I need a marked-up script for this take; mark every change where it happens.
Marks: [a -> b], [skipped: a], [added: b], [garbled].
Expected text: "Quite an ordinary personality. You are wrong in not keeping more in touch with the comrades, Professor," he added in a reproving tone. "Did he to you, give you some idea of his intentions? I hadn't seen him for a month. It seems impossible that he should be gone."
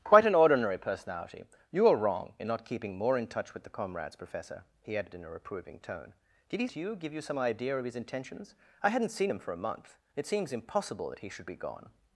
"Quite an ordinary personality. You are wrong in not keeping more in touch with the comrades, Professor," he added in a reproving tone. "Did he to you, give you some idea of his intentions? I hadn't seen him for a month. It seems impossible that he should be gone."